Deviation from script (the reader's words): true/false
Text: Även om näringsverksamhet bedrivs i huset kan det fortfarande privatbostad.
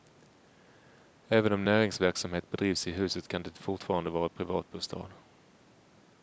true